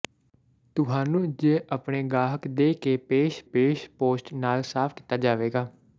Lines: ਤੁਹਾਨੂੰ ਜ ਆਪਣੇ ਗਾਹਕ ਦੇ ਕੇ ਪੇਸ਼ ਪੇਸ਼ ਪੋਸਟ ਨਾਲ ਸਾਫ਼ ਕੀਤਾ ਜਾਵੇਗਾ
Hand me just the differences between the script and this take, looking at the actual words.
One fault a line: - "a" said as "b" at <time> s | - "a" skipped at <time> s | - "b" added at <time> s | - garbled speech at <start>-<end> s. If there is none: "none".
none